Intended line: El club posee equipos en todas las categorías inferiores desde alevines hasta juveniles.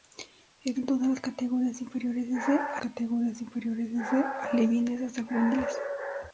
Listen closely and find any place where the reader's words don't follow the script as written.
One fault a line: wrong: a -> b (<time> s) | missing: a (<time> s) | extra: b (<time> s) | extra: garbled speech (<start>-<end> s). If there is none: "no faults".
wrong: club posee equipos en todas las -> en todas las categorías inferiores desde (0.8 s)